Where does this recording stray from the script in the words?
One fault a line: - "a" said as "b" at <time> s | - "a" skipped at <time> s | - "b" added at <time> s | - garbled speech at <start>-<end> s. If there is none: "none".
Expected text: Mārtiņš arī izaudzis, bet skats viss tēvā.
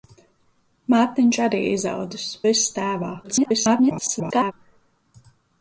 - "bet skats" skipped at 2.3 s
- garbled speech at 3.2-4.5 s